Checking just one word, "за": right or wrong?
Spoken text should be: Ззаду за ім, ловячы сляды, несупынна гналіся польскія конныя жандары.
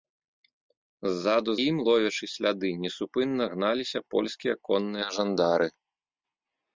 wrong